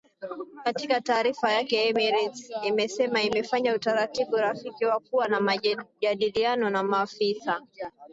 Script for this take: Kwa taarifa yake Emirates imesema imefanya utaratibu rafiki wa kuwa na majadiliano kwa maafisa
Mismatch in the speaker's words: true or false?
true